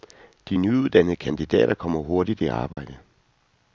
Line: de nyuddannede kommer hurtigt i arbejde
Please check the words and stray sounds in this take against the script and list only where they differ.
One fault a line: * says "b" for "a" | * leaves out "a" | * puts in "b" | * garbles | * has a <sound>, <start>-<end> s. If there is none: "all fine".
* puts in "kandidater"
* has a dropout, 2.7-2.8 s